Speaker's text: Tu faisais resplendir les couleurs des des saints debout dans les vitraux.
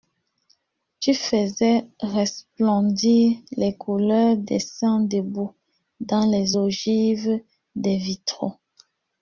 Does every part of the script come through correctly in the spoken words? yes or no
no